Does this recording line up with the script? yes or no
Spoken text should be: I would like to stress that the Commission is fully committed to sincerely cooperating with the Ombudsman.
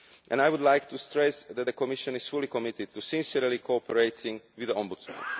yes